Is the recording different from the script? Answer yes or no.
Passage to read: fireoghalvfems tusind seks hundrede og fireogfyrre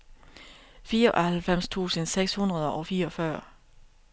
no